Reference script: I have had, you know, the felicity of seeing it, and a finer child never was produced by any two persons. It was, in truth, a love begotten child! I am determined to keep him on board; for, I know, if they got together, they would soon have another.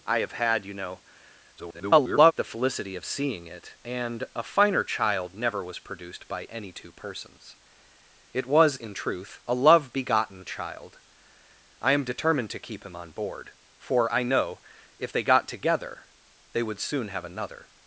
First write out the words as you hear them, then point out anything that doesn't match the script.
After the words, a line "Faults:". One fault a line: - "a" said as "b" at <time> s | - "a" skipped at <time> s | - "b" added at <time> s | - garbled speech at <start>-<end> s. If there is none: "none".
I have had, you know, [garbled] the felicity of seeing it, and a finer child never was produced by any two persons. It was, in truth, a love begotten child! I am determined to keep him on board; for, I know, if they got together, they would soon have another.
Faults:
- garbled speech at 1.6-2.3 s